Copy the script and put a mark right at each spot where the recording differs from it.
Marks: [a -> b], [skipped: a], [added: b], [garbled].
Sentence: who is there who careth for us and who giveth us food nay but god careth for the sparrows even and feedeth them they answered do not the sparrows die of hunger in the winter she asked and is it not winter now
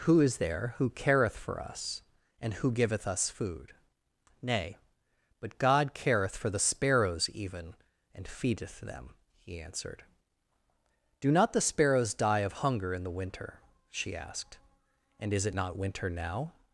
who is there who careth for us and who giveth us food nay but god careth for the sparrows even and feedeth them [they -> he] answered do not the sparrows die of hunger in the winter she asked and is it not winter now